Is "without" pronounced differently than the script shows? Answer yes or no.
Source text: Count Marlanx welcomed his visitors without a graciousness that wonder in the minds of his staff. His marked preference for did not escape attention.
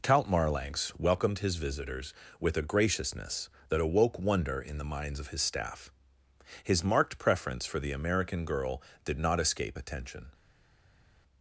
yes